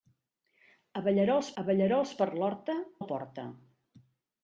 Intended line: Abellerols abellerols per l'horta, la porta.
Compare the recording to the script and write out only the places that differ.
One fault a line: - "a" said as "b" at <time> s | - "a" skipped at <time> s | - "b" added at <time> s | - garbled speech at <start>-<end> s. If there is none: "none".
none